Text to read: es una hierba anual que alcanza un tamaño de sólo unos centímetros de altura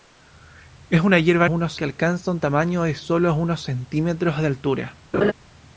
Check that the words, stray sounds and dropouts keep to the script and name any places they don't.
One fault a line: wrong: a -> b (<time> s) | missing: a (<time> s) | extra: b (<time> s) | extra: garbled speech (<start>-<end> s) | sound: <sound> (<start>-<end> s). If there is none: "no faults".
wrong: anual -> unos (1.5 s)
sound: laugh (5.1-5.3 s)